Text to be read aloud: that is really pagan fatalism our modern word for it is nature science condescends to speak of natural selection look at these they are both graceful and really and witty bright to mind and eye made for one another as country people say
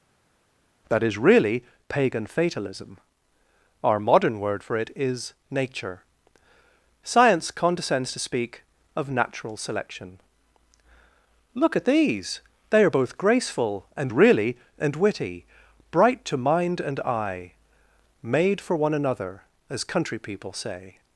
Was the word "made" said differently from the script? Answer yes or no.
no